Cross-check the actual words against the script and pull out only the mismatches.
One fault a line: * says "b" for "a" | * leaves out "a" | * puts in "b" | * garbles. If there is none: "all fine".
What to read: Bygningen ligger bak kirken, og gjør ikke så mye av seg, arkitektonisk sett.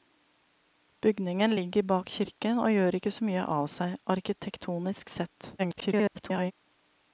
* garbles